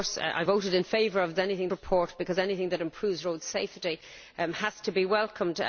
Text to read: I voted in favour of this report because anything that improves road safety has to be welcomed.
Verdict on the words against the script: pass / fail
fail